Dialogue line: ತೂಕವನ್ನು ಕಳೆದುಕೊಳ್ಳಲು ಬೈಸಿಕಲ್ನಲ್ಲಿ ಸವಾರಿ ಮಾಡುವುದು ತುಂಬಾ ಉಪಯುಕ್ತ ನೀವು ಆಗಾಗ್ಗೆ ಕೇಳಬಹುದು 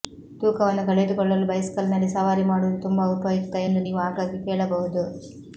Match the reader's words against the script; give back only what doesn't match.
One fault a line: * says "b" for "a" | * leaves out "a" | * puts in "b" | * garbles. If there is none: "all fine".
* puts in "ಎಂದು"